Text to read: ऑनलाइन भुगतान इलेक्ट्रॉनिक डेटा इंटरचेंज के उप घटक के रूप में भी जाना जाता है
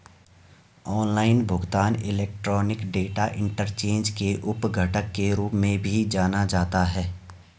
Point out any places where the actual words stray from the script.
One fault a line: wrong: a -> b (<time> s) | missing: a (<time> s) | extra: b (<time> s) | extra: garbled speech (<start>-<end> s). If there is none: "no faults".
no faults